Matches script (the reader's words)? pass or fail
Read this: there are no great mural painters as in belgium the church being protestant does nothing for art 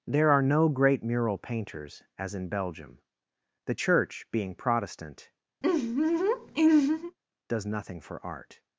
pass